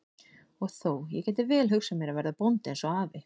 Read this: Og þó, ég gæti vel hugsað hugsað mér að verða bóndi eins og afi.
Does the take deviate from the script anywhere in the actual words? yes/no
yes